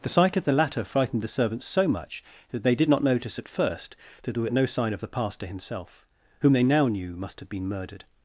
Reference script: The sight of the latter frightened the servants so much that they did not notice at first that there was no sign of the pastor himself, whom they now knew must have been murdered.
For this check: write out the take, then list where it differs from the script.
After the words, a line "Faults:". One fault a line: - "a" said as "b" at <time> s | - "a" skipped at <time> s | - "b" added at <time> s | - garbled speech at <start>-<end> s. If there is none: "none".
The sight of the latter frightened the servants so much that they did not notice at first that there was no sign of the pastor himself, whom they now knew must have been murdered.
Faults:
none